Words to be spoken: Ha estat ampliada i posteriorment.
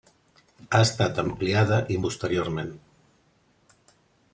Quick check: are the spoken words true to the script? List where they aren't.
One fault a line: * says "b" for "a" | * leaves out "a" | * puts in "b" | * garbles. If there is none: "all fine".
all fine